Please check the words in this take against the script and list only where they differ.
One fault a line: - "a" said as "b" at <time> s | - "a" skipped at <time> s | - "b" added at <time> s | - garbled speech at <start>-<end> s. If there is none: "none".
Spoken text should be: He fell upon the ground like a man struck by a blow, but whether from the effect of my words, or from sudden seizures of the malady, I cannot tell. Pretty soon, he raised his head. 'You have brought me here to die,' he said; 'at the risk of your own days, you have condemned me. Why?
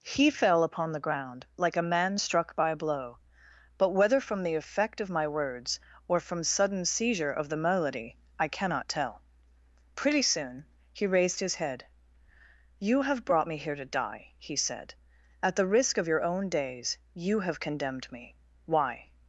- "seizures" said as "seizure" at 6.9 s